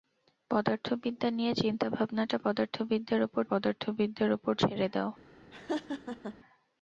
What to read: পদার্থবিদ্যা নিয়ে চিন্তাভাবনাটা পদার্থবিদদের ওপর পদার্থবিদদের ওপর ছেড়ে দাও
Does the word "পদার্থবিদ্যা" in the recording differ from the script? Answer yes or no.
no